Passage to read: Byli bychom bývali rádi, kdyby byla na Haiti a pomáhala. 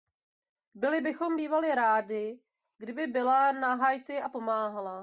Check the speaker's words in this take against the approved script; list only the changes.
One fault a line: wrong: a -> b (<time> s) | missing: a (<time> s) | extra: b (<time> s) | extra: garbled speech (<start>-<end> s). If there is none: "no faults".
no faults